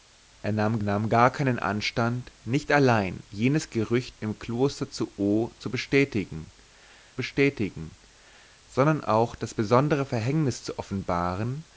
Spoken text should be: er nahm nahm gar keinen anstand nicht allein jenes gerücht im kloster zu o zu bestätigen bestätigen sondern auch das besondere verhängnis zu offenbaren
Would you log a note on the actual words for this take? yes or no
no